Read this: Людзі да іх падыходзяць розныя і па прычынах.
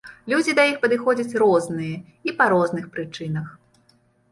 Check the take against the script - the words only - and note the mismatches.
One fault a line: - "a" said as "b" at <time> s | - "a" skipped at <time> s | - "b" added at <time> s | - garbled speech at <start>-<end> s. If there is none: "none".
- "розных" added at 2.6 s